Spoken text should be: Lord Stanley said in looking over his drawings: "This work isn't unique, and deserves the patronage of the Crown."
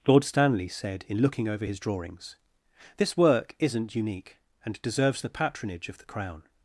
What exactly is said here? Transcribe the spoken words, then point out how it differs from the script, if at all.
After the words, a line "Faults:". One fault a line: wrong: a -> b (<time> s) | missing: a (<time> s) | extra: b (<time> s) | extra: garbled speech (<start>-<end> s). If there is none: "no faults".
Lord Stanley said in looking over his drawings: "This work isn't unique, and deserves the patronage of the Crown."
Faults:
no faults